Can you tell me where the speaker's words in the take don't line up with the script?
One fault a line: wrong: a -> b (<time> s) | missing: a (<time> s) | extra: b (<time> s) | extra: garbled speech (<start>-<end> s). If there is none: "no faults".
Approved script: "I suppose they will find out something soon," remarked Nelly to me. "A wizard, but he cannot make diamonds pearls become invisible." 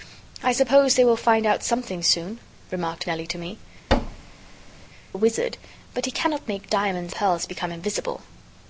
no faults